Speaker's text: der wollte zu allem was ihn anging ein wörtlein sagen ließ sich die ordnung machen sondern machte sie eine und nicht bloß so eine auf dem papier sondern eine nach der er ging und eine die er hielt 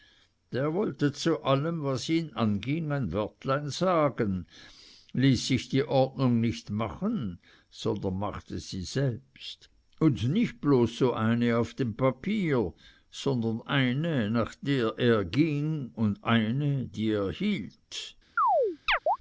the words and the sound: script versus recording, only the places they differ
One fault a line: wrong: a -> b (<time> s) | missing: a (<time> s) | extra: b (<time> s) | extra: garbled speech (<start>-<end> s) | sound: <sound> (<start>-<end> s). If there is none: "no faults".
extra: nicht (6.4 s)
wrong: eine -> selbst (8.8 s)
sound: chirp (18.4-19.2 s)